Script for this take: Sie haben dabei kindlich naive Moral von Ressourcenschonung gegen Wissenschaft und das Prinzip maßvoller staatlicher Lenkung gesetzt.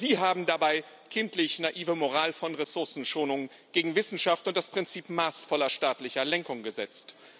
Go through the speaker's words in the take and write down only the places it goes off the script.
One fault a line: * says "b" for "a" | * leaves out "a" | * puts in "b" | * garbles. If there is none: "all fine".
all fine